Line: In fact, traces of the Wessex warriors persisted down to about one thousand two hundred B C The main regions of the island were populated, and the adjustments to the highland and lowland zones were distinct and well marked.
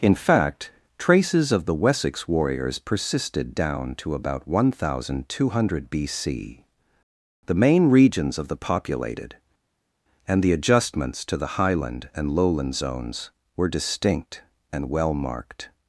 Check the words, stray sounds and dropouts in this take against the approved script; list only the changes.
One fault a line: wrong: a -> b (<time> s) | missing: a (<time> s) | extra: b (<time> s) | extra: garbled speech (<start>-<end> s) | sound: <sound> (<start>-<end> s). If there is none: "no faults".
missing: island were (8.6 s)